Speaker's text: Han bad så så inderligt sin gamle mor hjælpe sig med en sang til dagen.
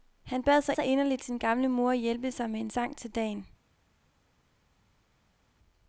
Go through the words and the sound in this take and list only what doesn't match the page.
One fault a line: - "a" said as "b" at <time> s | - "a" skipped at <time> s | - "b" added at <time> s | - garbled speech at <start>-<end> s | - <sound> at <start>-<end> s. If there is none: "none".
none